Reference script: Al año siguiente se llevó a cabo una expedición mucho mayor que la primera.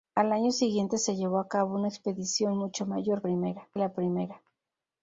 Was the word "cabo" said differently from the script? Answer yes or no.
no